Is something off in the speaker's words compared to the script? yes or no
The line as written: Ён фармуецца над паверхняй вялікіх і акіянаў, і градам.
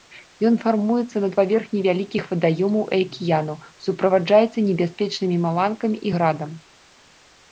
yes